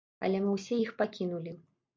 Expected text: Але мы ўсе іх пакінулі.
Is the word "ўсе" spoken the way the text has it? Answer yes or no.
yes